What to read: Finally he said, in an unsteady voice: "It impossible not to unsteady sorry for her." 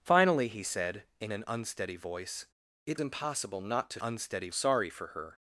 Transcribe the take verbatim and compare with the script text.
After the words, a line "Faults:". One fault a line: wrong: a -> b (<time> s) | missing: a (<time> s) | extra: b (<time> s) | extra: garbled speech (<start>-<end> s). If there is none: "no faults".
Finally he said, in an unsteady voice: "It impossible not to unsteady sorry for her."
Faults:
no faults